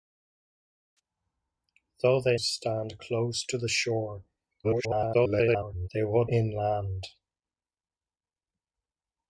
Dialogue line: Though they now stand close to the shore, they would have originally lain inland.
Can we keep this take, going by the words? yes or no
no